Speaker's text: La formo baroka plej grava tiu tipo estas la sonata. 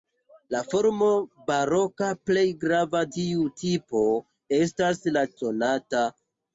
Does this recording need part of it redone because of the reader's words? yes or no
no